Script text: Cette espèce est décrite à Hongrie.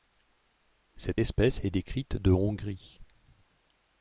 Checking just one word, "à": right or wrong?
wrong